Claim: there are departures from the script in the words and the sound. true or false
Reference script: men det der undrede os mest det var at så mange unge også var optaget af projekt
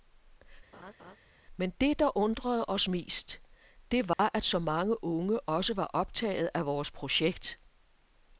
true